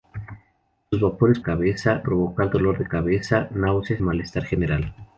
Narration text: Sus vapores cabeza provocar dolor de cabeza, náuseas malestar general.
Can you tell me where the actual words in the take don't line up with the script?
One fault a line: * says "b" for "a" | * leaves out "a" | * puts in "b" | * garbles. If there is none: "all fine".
all fine